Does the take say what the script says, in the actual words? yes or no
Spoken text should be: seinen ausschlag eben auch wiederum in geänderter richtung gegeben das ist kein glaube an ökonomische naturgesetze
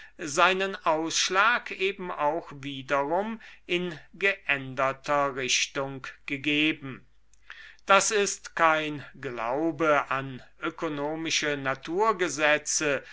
yes